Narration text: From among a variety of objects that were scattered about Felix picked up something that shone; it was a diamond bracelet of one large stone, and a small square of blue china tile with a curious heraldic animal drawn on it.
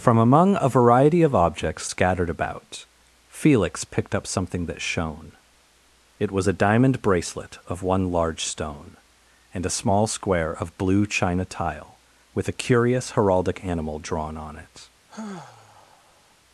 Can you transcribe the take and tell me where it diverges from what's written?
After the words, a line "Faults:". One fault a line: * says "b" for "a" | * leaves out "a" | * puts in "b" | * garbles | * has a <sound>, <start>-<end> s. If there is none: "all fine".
From among a variety of objects scattered about Felix picked up something that shone; it was a diamond bracelet of one large stone, and a small square of blue china tile with a curious heraldic animal drawn on it.
Faults:
* leaves out "that were"
* has a sigh, 15.1-16.3 s